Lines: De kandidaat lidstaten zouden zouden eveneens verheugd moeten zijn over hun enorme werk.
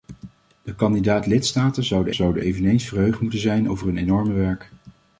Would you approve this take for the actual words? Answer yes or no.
yes